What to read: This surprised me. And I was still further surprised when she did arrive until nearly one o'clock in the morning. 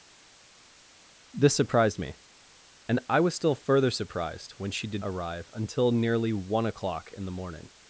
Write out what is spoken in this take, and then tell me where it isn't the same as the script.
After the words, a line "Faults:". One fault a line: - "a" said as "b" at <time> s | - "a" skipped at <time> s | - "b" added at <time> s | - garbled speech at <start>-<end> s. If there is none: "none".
This surprised me. And I was still further surprised when she did arrive until nearly one o'clock in the morning.
Faults:
none